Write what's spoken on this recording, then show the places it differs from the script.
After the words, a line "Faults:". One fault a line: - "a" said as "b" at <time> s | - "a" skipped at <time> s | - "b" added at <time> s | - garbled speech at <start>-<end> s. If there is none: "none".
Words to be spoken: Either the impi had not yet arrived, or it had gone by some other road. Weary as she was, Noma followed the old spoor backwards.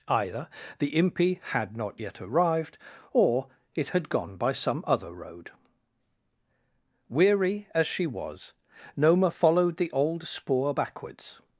Either the impi had not yet arrived, or it had gone by some other road. Weary as she was, Noma followed the old spoor backwards.
Faults:
none